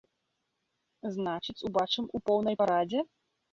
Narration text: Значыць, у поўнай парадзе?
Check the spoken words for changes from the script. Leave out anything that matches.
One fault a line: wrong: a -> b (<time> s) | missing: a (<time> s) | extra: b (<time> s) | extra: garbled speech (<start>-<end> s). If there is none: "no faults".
extra: убачым (1.7 s)